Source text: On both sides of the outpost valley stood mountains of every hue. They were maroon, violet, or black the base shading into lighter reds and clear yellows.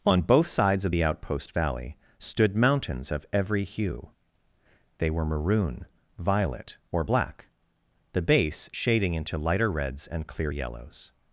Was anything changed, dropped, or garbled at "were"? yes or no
no